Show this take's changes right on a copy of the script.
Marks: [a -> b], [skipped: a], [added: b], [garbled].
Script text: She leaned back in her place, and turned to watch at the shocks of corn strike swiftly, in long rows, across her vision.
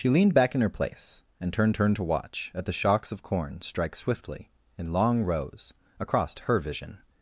She leaned back in her place, and turned [added: turned] to watch at the shocks of corn strike swiftly, in long rows, across her vision.